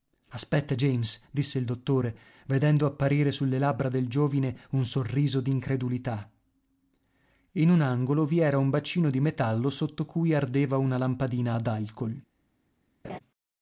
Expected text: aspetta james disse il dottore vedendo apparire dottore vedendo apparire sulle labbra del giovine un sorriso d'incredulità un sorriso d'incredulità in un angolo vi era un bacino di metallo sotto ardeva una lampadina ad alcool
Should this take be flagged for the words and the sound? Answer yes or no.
yes